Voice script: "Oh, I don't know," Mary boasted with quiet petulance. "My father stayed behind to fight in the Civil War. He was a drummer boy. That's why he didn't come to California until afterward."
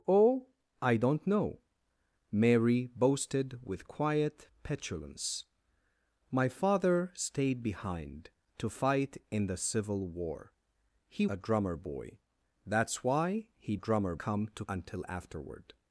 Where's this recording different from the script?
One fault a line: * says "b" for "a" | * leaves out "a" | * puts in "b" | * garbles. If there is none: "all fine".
* leaves out "was"
* says "drummer" for "didn't"
* leaves out "California"